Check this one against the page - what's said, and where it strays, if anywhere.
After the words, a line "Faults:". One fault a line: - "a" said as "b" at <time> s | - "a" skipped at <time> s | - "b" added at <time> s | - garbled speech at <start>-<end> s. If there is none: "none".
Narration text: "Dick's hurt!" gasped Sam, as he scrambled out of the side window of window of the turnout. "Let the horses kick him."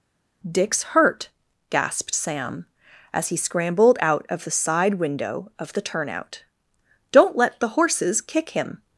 "Dick's hurt!" gasped Sam, as he scrambled out of the side window of the turnout. "Don't let the horses kick him."
Faults:
- "window of" skipped at 5.7 s
- "Don't" added at 7.1 s